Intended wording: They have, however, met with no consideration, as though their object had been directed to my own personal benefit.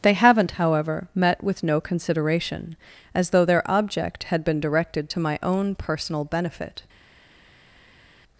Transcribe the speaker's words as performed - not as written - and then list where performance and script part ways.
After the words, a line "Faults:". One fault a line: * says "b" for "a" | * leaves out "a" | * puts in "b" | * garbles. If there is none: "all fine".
They haven't, however, met with no consideration, as though their object had been directed to my own personal benefit.
Faults:
* says "haven't" for "have"